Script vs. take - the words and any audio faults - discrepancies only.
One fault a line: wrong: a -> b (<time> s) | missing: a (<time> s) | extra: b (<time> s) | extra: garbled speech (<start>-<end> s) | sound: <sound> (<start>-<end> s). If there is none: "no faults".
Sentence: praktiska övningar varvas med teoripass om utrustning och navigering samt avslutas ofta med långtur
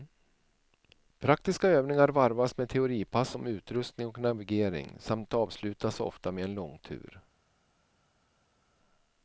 extra: en (6.4 s)